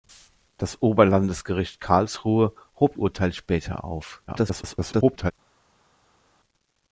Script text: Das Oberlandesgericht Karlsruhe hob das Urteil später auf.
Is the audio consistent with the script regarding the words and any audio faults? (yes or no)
no